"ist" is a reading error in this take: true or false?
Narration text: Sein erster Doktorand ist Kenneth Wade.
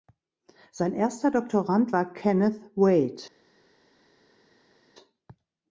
true